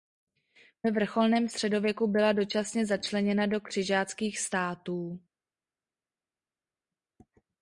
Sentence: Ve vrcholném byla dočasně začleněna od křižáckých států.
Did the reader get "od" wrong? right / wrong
wrong